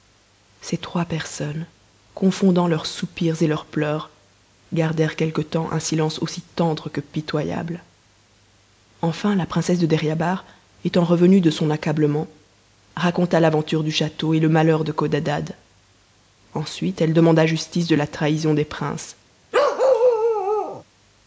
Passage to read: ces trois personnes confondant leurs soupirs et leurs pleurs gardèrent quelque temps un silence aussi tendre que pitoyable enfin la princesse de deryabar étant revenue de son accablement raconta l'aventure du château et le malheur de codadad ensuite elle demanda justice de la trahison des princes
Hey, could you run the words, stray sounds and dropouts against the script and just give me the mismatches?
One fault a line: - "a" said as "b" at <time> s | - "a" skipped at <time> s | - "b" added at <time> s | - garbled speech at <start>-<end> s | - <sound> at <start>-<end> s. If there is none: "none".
- bark at 19.5-20.8 s